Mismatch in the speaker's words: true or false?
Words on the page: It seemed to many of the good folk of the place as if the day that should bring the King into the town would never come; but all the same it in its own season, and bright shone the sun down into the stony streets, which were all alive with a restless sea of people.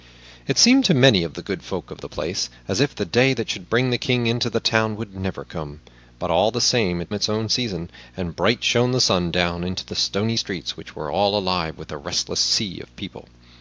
false